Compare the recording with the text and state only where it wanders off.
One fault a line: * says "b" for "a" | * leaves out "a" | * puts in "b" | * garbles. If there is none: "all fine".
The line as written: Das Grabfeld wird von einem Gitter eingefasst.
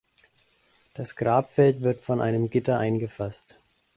all fine